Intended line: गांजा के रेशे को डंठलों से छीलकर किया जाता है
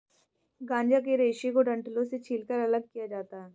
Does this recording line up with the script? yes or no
no